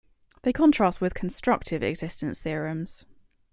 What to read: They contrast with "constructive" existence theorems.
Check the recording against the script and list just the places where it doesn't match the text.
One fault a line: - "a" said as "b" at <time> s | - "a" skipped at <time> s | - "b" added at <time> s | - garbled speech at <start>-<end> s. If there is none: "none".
none